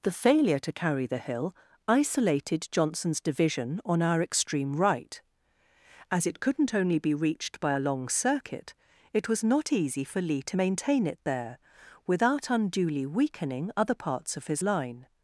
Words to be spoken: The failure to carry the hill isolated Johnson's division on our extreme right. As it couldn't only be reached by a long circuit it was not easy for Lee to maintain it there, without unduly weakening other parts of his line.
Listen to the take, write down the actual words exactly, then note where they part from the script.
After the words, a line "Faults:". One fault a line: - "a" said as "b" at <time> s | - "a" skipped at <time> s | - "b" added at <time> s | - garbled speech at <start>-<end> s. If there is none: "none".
The failure to carry the hill isolated Johnson's division on our extreme right. As it couldn't only be reached by a long circuit it was not easy for Lee to maintain it there, without unduly weakening other parts of his line.
Faults:
none